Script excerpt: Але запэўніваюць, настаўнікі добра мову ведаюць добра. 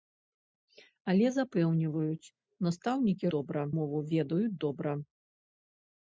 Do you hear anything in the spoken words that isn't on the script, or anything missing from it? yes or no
no